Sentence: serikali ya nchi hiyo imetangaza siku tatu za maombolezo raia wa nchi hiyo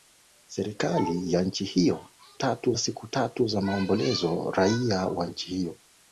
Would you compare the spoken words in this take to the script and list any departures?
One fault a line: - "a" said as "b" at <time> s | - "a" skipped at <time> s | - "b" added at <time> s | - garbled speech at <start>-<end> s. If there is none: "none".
- "imetangaza" said as "tatu" at 2.3 s